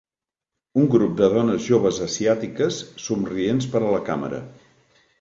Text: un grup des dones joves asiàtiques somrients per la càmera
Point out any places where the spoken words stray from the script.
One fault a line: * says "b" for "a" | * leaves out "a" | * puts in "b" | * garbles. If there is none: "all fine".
* says "de" for "des"
* puts in "a"